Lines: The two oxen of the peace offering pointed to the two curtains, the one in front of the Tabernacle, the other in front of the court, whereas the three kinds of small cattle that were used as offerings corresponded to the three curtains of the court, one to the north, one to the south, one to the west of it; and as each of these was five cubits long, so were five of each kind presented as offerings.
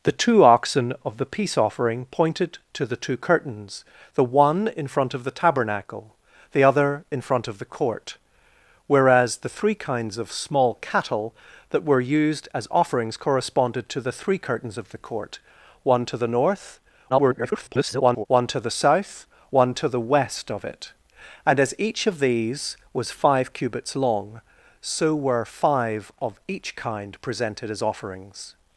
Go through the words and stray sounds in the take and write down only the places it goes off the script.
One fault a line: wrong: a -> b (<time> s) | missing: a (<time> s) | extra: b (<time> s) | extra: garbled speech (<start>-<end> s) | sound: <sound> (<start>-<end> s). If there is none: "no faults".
extra: garbled speech (17.1-18.3 s)